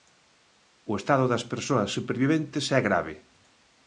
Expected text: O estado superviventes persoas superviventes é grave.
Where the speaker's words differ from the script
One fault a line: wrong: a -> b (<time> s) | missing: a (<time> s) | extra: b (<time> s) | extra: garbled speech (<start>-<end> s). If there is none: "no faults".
wrong: superviventes -> das (1.3 s)